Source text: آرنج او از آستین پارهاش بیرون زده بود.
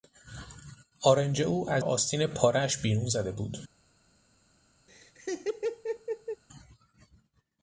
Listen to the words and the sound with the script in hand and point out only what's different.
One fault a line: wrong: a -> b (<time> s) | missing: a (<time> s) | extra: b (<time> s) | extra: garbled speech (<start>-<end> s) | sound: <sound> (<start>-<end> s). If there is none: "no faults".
sound: laugh (4.9-6.4 s)